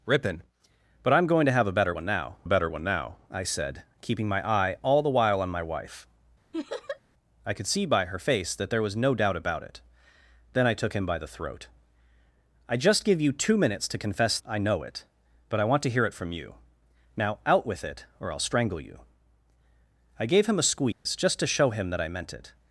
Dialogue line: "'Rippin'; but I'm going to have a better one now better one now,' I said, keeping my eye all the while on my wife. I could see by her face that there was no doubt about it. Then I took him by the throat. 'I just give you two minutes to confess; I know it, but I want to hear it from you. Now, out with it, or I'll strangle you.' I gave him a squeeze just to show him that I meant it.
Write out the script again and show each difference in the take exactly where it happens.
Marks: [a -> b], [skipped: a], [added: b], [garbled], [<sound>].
"'Rippin'; but I'm going to have a better one now better one now,' I said, keeping my eye all the while on my wife. [laugh] I could see by her face that there was no doubt about it. Then I took him by the throat. 'I just give you two minutes to confess; I know it, but I want to hear it from you. Now, out with it, or I'll strangle you.' I gave him a squeeze [dropout] just to show him that I meant it.